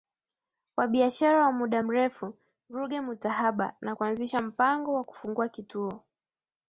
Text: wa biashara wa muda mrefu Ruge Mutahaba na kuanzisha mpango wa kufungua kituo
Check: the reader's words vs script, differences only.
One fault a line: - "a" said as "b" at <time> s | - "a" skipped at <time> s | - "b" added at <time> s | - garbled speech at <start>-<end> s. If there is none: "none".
none